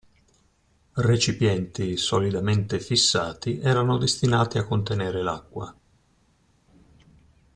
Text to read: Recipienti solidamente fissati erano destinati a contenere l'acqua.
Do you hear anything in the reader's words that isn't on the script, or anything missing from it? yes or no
no